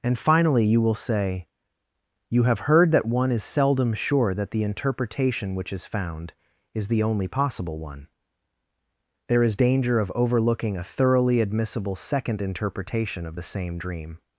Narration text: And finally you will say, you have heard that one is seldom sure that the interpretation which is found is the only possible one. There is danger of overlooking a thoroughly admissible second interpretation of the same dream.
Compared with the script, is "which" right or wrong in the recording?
right